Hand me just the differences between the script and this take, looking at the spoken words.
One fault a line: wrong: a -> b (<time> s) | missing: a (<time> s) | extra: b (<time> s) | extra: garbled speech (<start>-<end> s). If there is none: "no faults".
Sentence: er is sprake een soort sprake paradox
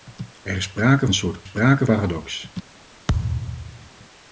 no faults